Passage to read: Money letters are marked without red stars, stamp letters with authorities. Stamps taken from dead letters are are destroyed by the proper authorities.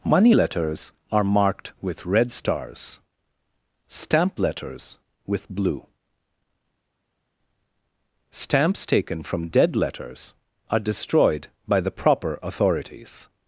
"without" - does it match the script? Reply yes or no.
no